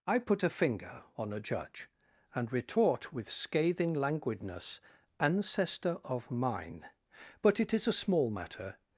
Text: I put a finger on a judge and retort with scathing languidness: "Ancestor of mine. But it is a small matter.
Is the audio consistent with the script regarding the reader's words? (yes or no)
yes